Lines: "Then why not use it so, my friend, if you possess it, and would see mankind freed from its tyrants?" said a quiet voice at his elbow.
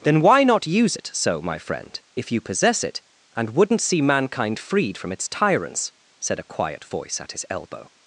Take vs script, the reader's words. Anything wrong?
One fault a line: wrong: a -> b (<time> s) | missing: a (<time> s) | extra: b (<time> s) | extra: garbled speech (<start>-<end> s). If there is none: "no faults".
wrong: would -> wouldn't (3.5 s)